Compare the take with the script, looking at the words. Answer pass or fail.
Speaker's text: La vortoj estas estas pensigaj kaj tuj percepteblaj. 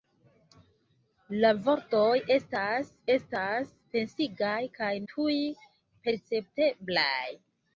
pass